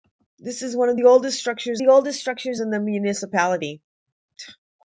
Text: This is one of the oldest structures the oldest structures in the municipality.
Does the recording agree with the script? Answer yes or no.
yes